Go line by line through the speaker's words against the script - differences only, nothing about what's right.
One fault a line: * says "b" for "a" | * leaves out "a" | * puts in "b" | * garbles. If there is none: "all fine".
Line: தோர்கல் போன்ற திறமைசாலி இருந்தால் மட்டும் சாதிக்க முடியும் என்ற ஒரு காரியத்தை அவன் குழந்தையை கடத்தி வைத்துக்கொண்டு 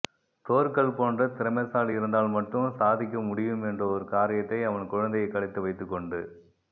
all fine